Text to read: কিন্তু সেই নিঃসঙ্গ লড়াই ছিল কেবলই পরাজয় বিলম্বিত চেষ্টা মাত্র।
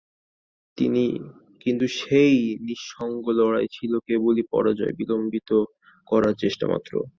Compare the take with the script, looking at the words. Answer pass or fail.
fail